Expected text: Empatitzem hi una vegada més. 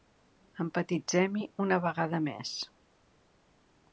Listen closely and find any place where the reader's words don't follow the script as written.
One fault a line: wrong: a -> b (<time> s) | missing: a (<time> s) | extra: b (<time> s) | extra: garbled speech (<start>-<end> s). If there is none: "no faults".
no faults